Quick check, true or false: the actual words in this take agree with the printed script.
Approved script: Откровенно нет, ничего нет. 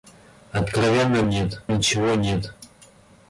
true